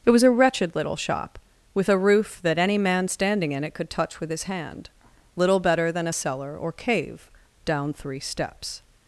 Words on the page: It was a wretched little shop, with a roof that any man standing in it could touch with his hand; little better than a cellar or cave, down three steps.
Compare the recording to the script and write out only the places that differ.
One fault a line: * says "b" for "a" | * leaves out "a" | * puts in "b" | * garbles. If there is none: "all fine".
all fine